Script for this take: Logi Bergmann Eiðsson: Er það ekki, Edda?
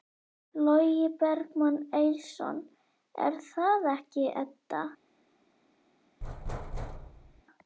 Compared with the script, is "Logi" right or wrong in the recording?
right